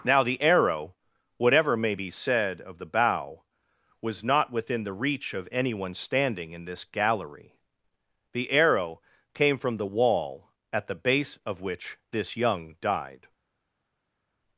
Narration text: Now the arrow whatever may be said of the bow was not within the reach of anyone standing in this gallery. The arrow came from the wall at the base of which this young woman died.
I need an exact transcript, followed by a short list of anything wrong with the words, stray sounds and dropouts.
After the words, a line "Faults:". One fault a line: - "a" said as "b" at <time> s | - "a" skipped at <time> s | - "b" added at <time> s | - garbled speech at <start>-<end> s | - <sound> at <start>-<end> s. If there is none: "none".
Now the arrow whatever may be said of the bow was not within the reach of anyone standing in this gallery. The arrow came from the wall at the base of which this young died.
Faults:
- "woman" skipped at 12.7 s